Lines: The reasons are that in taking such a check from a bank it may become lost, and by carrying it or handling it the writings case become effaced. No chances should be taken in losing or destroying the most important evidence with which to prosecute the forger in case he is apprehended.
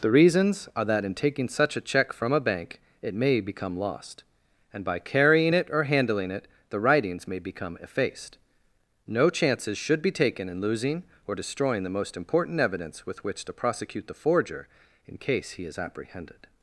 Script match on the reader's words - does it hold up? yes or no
no